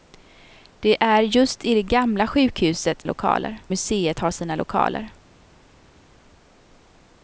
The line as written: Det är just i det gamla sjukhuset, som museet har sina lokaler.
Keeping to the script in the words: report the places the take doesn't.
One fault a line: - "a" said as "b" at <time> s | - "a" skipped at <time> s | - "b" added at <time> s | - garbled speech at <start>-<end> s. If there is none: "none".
- "som" said as "lokaler" at 3.0 s